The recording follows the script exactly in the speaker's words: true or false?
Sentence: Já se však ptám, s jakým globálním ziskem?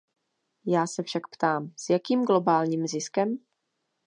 true